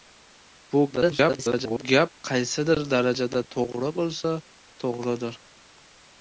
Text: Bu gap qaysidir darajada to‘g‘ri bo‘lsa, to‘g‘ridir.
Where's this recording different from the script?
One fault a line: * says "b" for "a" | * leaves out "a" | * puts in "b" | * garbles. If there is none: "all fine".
* garbles